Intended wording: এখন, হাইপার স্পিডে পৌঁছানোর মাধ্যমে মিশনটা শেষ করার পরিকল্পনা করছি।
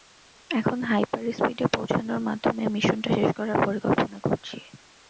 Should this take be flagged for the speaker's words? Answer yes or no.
no